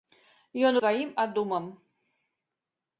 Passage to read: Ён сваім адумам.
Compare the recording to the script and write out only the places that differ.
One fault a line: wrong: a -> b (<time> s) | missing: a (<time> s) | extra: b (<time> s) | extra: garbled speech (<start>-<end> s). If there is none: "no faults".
no faults